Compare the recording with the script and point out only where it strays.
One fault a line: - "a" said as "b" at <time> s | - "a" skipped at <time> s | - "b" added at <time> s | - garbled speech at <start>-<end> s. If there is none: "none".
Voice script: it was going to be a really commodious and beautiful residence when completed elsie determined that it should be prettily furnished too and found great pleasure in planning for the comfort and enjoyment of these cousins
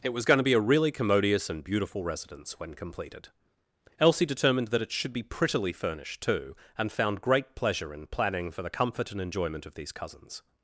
none